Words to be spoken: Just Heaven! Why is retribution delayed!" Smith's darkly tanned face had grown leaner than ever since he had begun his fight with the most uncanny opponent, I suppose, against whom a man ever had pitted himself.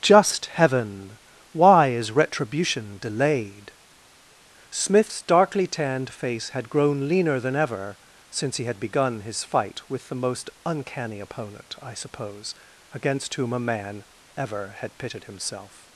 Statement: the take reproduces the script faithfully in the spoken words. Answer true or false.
true